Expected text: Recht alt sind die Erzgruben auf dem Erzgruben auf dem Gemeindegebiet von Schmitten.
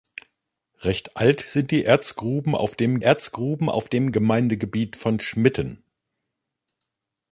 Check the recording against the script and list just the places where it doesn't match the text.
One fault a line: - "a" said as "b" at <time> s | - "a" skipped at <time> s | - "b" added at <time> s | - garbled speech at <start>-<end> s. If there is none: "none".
none